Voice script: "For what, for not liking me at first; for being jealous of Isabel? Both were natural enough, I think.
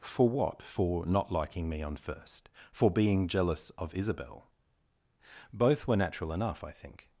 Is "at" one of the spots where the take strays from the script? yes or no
yes